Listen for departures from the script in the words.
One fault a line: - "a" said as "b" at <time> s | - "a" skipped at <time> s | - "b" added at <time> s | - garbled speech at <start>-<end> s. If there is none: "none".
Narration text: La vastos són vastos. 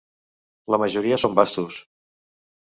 - "vastos" said as "majoria" at 0.8 s